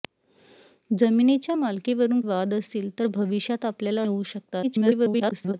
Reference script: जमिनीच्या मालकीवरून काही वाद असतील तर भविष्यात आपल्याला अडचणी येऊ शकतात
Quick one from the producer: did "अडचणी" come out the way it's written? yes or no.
no